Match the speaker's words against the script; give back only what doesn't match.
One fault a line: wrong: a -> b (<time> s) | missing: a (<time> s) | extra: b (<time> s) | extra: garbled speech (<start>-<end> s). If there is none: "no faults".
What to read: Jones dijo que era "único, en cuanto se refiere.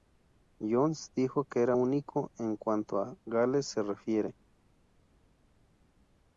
extra: a Gales (3.0 s)